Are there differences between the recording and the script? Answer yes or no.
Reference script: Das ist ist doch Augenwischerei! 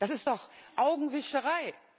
yes